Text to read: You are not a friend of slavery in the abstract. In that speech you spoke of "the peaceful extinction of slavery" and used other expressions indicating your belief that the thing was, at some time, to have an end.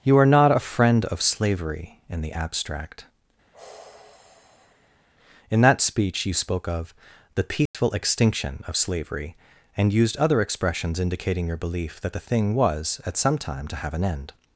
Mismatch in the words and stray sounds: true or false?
true